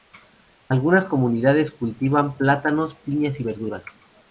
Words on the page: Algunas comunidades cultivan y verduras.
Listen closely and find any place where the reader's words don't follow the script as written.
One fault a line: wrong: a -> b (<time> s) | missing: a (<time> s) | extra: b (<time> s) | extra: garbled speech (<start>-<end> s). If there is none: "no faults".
extra: plátanos piñas (2.4 s)